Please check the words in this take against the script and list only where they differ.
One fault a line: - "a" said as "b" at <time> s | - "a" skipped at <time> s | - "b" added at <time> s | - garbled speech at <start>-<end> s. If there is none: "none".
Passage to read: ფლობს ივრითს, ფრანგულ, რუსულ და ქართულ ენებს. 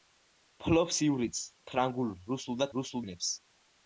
- "ქართულ" said as "რუსულ" at 2.8 s